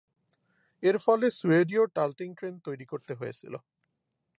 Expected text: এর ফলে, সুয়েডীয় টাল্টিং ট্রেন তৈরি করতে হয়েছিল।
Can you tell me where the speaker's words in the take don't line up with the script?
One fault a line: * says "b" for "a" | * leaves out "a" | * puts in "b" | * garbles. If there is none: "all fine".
all fine